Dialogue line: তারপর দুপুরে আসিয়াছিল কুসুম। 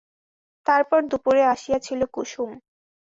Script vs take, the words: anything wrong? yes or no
no